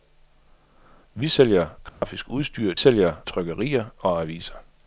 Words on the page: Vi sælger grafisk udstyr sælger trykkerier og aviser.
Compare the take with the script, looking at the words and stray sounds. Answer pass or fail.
fail